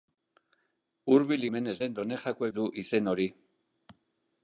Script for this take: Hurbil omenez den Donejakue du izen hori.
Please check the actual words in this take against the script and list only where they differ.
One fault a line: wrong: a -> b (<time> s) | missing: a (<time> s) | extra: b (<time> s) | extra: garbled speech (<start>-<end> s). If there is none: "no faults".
no faults